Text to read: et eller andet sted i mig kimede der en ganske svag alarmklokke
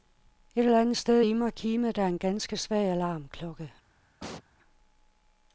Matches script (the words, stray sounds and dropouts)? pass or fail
fail